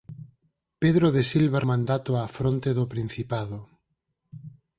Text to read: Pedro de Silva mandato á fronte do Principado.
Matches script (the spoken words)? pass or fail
pass